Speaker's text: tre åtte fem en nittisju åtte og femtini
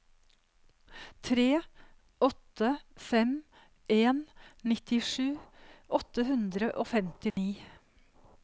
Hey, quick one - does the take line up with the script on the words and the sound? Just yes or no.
no